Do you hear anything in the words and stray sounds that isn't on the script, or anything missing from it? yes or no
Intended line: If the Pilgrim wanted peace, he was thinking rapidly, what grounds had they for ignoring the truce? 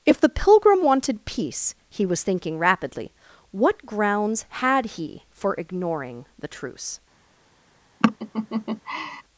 yes